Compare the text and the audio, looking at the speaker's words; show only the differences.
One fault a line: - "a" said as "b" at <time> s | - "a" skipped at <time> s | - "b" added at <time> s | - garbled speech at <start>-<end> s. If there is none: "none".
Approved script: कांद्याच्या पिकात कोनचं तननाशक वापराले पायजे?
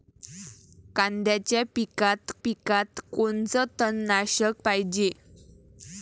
- "पिकात" added at 2.4 s
- "वापराले" skipped at 4.6 s